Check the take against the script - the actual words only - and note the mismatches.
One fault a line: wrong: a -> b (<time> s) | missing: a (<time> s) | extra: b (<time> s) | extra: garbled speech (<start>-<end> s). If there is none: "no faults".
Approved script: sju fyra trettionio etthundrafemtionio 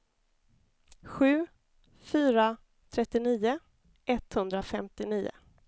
no faults